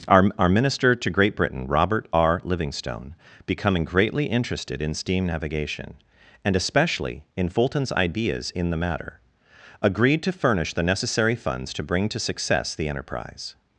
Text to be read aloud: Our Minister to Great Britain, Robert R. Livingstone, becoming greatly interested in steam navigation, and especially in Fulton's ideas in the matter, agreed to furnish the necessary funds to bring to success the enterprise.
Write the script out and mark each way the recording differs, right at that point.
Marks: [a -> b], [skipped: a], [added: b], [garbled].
Our [added: our] Minister to Great Britain, Robert R. Livingstone, becoming greatly interested in steam navigation, and especially in Fulton's ideas in the matter, agreed to furnish the necessary funds to bring to success the enterprise.